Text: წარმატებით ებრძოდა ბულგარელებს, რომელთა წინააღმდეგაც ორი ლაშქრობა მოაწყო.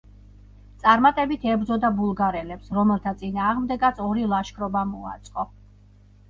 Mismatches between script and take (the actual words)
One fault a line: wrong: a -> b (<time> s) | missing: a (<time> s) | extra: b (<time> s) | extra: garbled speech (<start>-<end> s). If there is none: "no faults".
no faults